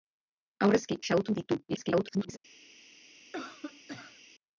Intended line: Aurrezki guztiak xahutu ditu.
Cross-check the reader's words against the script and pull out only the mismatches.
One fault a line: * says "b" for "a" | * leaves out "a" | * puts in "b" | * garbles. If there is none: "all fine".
* leaves out "guztiak"
* garbles